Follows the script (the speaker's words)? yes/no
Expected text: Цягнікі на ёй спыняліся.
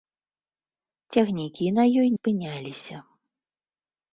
yes